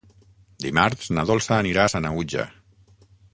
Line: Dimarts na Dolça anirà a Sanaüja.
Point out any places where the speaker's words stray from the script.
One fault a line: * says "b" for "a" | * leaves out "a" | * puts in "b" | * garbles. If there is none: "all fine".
all fine